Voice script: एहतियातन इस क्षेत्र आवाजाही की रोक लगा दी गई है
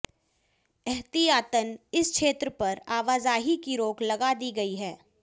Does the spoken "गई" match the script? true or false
true